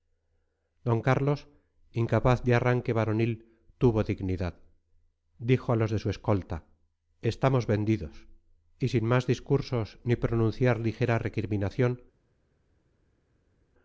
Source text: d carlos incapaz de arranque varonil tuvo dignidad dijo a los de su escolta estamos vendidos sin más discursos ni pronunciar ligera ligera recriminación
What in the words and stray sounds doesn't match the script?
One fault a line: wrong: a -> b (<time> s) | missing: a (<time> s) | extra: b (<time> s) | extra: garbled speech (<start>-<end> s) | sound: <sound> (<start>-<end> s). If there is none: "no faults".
extra: y (8.8 s)
missing: ligera (11.2 s)